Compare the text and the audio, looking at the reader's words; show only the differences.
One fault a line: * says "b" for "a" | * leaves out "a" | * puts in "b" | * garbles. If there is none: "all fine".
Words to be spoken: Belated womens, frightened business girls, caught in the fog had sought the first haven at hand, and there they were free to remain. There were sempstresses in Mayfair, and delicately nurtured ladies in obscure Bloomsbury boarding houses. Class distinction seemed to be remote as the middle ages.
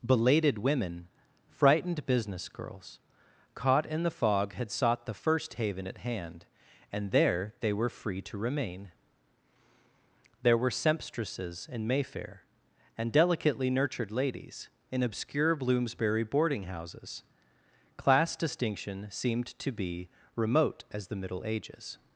* says "women" for "womens"